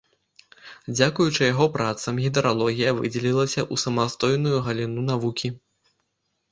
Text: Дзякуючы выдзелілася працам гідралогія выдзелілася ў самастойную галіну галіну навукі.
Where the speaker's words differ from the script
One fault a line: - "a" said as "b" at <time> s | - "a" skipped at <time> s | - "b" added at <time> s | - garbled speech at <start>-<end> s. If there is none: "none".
- "выдзелілася" said as "яго" at 1.5 s
- "галіну" skipped at 5.1 s